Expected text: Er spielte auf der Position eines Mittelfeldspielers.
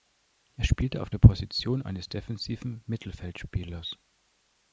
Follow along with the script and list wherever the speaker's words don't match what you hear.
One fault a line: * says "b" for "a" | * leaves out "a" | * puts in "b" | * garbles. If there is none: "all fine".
* puts in "defensiven"